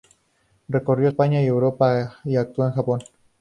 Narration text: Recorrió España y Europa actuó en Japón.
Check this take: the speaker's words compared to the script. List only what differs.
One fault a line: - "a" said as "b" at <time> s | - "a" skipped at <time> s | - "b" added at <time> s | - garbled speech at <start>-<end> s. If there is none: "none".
- "y" added at 2.2 s